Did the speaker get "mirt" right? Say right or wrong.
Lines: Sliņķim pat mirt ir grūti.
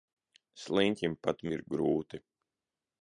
wrong